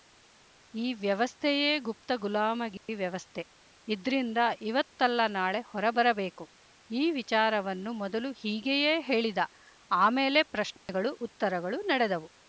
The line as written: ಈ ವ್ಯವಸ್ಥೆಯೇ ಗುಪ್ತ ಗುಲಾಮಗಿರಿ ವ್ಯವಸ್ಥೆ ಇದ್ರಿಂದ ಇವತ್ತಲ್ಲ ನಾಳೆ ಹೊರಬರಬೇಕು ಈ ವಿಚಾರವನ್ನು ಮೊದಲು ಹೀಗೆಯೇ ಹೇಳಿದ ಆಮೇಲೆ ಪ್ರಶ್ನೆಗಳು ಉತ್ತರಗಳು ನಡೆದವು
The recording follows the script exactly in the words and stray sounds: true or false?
false